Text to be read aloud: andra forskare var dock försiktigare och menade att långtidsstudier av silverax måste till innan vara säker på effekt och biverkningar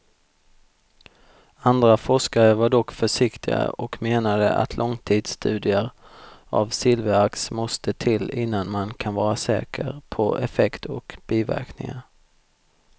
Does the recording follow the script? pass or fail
fail